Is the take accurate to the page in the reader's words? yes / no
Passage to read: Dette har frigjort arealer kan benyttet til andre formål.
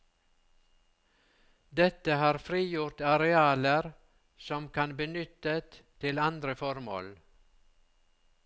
no